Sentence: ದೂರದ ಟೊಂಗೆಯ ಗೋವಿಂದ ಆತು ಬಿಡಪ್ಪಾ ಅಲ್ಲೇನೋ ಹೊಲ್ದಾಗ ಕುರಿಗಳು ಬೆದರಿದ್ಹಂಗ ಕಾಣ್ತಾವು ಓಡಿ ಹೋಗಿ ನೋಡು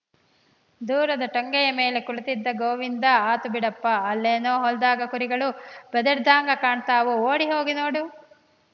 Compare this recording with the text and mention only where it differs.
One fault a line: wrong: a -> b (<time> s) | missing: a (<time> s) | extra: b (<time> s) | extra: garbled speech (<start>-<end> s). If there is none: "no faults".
extra: ಮೇಲೆ ಕುಳಿತಿದ್ದ (1.8 s)